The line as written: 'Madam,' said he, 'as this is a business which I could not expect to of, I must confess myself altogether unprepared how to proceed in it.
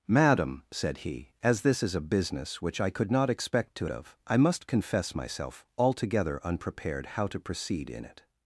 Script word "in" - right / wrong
right